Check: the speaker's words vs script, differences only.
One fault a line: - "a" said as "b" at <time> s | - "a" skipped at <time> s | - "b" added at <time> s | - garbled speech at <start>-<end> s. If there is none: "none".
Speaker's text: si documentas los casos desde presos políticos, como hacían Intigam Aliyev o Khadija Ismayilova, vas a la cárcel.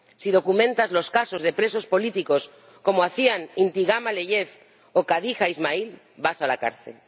- "desde" said as "de" at 1.4 s